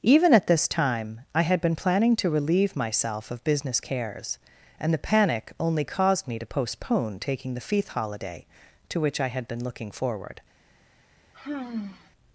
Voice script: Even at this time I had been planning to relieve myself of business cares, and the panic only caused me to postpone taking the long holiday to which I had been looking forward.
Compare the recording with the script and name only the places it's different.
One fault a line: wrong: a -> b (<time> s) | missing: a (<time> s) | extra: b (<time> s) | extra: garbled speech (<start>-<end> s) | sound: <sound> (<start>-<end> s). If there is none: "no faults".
wrong: long -> feith (7.6 s)
sound: sigh (11.3-12.1 s)